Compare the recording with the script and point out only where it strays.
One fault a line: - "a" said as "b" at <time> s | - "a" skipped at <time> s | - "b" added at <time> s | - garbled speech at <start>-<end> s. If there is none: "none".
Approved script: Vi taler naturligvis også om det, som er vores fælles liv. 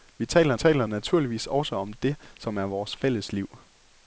- "taler" added at 0.5 s